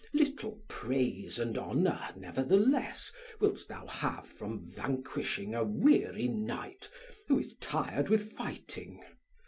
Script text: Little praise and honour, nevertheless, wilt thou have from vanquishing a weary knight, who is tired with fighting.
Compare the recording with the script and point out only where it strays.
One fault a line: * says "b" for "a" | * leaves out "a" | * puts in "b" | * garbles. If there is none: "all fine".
all fine